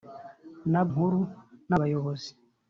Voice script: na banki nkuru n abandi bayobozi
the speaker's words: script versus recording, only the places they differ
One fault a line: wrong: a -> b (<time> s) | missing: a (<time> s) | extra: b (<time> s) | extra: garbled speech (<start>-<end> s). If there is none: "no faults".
missing: banki (0.8 s)
missing: abandi (1.7 s)